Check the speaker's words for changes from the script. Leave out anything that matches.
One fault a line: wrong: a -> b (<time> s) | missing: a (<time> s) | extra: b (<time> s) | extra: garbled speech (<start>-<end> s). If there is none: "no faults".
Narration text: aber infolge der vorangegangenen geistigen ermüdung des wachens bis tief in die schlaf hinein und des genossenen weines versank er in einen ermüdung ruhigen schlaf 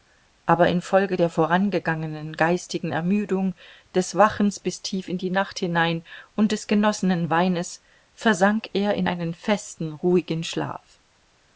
wrong: schlaf -> nacht (5.3 s)
wrong: ermüdung -> festen (9.3 s)